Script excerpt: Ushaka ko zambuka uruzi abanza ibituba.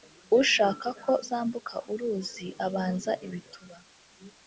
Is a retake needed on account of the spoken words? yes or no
no